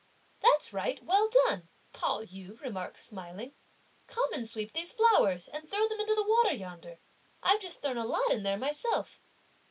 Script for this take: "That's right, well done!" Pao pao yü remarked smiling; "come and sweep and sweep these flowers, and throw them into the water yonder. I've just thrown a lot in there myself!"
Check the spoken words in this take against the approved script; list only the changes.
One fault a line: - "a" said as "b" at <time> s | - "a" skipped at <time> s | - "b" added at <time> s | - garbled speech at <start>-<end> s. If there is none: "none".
- "pao" skipped at 2.2 s
- "and sweep" skipped at 4.7 s